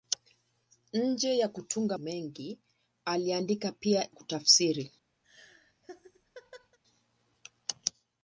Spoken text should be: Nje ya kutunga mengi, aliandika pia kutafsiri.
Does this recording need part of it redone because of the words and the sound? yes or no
yes